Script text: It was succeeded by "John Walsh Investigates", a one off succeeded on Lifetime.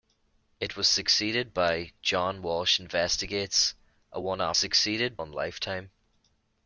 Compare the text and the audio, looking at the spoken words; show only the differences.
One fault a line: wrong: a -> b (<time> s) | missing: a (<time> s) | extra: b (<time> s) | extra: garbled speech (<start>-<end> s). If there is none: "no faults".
no faults